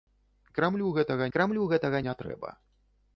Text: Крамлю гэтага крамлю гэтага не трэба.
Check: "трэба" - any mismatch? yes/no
no